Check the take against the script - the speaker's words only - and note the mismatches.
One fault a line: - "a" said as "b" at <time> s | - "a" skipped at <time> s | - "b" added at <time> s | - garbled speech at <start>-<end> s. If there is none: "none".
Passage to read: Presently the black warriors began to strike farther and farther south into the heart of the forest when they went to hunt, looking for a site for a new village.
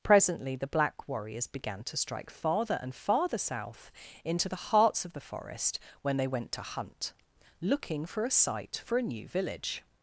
- "heart" said as "hearts" at 4.5 s